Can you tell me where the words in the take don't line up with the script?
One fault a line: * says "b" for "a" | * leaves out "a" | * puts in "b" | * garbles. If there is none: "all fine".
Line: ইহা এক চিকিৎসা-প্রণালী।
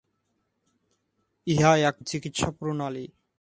all fine